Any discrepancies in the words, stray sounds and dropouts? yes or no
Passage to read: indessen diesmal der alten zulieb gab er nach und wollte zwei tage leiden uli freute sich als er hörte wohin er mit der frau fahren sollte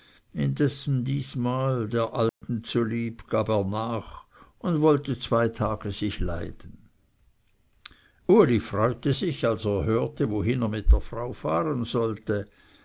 yes